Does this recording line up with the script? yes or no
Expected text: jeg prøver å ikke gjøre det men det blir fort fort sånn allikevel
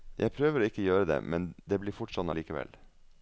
no